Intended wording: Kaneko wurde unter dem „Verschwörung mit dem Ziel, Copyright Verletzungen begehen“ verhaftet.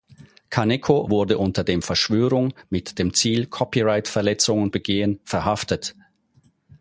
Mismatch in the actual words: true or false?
false